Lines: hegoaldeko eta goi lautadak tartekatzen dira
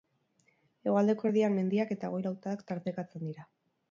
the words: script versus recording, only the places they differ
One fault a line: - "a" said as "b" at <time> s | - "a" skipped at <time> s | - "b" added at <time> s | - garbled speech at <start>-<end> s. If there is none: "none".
- "erdian mendiak" added at 1.3 s